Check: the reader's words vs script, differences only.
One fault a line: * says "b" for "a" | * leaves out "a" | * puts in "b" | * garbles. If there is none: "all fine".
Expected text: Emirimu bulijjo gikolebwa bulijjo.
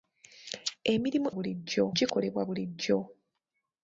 all fine